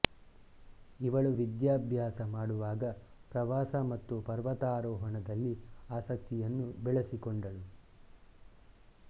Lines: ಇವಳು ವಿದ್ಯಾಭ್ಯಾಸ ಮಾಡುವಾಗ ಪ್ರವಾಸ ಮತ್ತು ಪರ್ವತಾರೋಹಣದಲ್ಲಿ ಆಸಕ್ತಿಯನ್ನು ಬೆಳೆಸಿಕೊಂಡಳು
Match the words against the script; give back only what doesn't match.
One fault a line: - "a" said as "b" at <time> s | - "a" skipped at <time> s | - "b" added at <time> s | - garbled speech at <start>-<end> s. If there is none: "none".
none